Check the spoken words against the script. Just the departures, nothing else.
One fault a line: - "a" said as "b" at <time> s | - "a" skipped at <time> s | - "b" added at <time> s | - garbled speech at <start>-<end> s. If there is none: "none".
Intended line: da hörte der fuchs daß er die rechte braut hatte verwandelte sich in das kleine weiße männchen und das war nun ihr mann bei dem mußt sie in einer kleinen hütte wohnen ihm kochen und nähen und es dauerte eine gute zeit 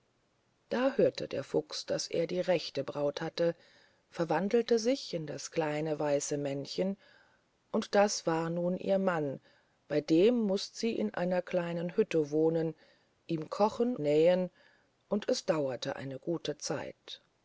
- "und" skipped at 13.9 s